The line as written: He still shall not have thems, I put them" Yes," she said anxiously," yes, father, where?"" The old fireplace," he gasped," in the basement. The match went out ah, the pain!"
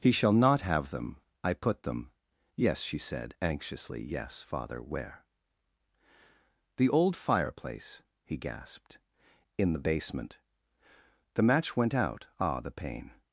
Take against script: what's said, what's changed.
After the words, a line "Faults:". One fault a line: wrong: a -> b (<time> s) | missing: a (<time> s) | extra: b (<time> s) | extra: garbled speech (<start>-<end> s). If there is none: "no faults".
He shall not have them, I put them" Yes," she said anxiously," yes, father, where?"" The old fireplace," he gasped," in the basement. The match went out ah, the pain!"
Faults:
missing: still (0.1 s)
wrong: thems -> them (0.9 s)